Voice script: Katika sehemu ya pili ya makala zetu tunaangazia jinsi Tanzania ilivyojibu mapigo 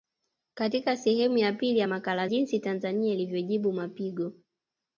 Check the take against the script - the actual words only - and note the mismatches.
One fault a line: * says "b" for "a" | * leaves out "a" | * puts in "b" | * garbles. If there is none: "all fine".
* leaves out "zetu tunaangazia"